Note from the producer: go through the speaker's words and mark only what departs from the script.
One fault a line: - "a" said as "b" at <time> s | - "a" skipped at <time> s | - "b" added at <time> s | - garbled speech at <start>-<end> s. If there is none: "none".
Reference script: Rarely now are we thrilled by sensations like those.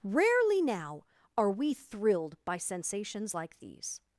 - "those" said as "these" at 3.6 s